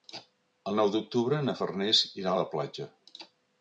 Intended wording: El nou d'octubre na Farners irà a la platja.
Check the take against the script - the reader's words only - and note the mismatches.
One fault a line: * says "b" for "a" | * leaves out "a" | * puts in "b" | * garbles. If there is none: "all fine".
all fine